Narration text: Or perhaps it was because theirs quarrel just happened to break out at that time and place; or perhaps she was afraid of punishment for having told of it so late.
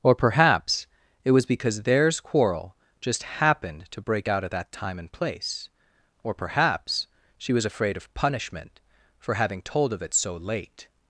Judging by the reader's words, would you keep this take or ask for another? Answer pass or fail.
pass